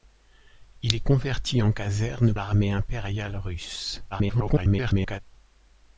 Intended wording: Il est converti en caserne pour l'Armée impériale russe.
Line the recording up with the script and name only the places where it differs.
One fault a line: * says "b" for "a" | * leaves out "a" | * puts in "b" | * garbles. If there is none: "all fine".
* leaves out "pour"
* garbles